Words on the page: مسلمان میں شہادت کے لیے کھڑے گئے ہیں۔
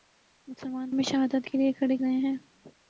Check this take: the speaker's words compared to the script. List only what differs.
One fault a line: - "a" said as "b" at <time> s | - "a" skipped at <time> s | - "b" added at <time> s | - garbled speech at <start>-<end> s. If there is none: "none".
none